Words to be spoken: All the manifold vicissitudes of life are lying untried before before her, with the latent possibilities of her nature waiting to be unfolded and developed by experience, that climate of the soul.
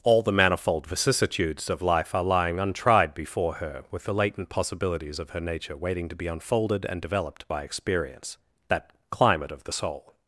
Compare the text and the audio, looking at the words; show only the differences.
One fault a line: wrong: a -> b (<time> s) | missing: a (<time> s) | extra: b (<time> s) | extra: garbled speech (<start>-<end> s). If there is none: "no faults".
missing: before (3.5 s)